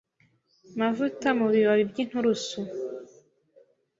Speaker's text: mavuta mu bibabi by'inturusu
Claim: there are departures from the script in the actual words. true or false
false